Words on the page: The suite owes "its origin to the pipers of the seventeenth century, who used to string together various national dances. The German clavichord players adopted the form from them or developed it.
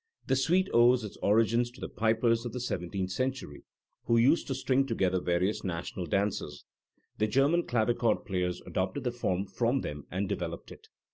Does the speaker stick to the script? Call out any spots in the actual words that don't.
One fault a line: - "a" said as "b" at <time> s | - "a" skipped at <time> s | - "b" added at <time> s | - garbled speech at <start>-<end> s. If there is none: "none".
- "or" said as "and" at 10.1 s